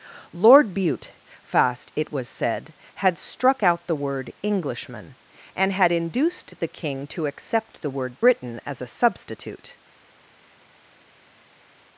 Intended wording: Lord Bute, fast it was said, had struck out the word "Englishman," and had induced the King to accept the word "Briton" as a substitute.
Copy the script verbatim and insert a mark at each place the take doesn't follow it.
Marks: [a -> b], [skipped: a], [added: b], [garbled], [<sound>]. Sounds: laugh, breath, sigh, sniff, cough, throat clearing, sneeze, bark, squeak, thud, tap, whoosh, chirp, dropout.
Lord Bute, fast it was said, had struck out the word "Englishman," and had induced the King to accept the word "Briton" as a substitute.